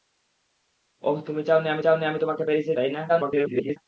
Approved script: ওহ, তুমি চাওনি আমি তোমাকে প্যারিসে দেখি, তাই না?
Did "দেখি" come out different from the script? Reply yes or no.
yes